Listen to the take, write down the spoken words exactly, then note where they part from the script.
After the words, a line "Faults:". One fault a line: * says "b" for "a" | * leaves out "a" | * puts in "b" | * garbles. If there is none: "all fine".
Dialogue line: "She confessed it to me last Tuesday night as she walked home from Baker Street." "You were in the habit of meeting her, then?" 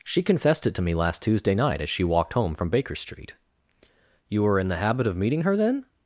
"She confessed it to me last Tuesday night as she walked home from Baker Street." "You were in the habit of meeting her, then?"
Faults:
all fine